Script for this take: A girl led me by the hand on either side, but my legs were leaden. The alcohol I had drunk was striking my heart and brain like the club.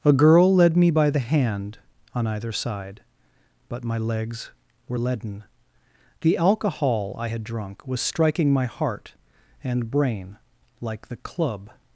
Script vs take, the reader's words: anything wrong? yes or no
no